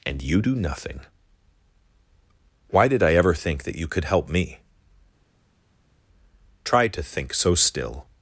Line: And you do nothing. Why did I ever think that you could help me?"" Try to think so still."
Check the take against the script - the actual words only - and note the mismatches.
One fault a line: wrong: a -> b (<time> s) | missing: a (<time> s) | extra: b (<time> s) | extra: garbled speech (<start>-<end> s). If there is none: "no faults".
no faults